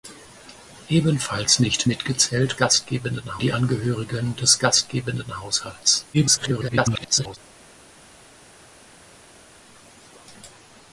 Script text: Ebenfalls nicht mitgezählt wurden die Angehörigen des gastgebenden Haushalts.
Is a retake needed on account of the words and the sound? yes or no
yes